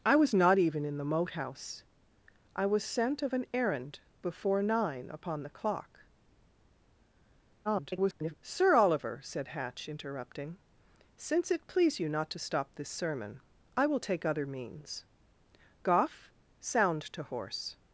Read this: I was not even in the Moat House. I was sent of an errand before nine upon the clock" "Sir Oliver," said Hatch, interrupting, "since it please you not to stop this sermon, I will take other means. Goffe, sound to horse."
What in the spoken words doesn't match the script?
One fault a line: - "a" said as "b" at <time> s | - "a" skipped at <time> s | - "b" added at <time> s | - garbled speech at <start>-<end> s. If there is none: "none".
- garbled speech at 7.6-8.3 s